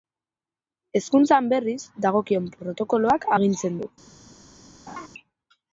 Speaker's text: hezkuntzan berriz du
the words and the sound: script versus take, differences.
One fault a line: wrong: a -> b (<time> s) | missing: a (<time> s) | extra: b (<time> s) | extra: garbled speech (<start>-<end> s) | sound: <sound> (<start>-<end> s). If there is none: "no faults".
extra: dagokion protokoloak agintzen (2.0 s)
sound: laugh (4.9-5.1 s)